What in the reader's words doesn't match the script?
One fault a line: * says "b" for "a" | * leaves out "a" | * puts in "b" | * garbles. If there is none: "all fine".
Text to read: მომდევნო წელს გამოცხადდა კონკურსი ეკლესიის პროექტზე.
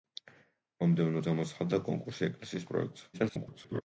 * leaves out "წელს"
* garbles